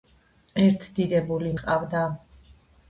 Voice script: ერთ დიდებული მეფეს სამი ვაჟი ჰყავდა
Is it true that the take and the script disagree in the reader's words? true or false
true